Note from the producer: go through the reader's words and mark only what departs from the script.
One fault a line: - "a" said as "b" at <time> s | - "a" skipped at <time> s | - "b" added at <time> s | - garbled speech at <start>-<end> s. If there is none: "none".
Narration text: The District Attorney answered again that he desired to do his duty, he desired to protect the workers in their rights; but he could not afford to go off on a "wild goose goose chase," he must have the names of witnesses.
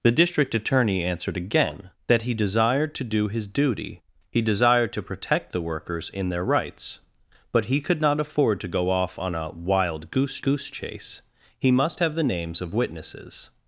none